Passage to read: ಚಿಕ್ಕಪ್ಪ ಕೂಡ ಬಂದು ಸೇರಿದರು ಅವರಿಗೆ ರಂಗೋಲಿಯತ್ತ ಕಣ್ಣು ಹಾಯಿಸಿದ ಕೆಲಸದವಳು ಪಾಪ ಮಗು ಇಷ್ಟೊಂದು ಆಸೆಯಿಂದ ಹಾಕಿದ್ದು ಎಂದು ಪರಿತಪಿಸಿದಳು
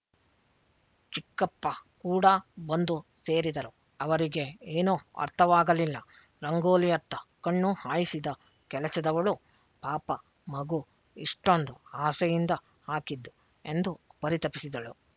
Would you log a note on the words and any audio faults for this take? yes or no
yes